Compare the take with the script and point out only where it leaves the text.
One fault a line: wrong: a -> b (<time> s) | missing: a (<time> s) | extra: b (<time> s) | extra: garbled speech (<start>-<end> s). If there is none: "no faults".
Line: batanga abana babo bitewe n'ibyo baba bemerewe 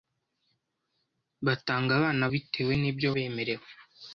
missing: babo (2.2 s)
missing: baba (3.1 s)